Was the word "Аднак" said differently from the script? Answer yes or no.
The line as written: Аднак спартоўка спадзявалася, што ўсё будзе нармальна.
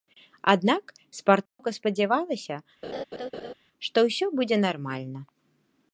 no